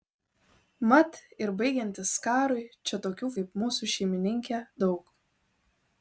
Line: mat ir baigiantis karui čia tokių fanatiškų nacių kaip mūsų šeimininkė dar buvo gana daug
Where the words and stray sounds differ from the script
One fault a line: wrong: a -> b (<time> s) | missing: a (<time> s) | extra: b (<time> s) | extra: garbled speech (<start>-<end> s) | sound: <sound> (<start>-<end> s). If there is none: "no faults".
missing: fanatiškų nacių (3.3 s)
missing: dar buvo gana (4.6 s)